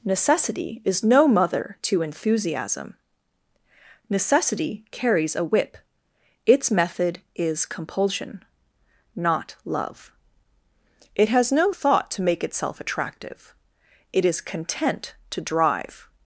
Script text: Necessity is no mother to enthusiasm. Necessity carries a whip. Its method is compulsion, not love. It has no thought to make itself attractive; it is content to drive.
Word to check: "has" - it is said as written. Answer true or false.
true